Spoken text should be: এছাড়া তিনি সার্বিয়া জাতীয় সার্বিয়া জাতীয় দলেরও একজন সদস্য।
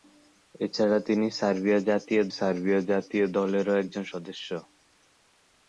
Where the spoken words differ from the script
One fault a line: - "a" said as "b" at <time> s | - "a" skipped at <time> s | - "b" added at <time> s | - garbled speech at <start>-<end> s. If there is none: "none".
none